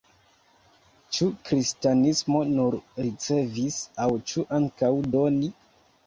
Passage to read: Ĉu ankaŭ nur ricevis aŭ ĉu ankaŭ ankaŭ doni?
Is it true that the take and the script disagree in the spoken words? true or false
true